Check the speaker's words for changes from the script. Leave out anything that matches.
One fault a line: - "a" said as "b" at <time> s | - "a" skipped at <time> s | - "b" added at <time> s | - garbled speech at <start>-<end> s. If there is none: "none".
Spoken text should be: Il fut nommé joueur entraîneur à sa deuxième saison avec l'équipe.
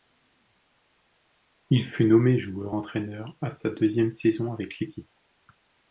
none